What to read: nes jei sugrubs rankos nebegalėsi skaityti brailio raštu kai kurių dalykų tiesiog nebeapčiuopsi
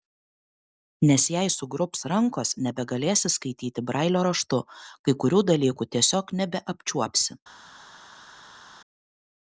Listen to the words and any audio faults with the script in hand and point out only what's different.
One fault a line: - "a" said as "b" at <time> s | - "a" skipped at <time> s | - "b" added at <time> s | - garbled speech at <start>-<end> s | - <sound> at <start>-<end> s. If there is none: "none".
none